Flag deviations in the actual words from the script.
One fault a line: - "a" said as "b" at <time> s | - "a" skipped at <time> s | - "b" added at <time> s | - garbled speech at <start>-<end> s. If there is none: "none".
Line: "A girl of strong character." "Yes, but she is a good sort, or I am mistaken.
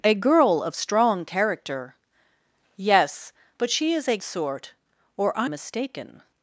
- "good" skipped at 4.2 s
- "am" skipped at 5.5 s